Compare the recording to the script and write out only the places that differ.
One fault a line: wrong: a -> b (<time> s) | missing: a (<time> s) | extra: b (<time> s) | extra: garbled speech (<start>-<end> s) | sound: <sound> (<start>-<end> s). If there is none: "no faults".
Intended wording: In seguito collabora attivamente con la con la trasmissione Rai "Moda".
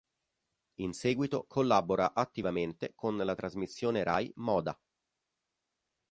missing: con la (3.4 s)